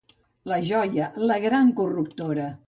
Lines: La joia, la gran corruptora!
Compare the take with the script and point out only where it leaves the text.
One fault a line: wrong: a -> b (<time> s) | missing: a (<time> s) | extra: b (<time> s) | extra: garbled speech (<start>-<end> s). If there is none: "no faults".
no faults